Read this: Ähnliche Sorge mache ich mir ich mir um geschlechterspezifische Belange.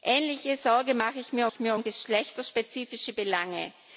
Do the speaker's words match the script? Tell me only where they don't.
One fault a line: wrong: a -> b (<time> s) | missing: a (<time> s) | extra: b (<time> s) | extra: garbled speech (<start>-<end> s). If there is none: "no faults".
no faults